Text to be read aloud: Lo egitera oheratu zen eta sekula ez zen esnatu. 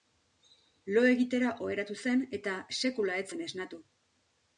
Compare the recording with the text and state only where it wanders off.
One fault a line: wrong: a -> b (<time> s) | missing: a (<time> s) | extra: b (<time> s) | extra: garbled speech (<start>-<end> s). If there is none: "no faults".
no faults